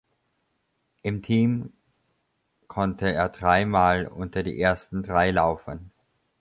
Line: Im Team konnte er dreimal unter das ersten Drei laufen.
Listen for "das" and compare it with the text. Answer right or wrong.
wrong